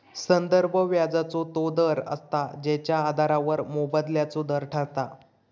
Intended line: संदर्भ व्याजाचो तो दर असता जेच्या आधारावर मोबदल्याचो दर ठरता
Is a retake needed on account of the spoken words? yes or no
no